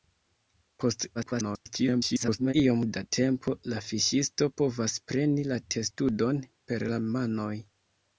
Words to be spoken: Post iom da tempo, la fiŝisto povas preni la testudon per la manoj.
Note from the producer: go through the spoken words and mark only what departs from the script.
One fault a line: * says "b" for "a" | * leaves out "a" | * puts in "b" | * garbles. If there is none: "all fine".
* garbles